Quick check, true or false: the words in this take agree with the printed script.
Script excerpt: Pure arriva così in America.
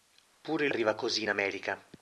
true